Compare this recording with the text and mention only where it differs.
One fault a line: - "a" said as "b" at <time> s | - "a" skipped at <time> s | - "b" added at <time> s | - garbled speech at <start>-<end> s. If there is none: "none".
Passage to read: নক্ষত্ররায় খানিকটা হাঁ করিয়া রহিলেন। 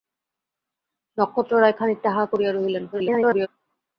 - garbled speech at 2.9-3.5 s